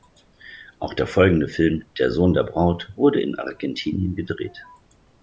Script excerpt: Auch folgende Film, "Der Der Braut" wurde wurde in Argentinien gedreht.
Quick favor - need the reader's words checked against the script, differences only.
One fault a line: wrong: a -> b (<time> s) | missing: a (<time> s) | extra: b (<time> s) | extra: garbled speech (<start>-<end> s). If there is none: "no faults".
extra: der (0.9 s)
extra: Sohn (2.1 s)
missing: wurde (3.2 s)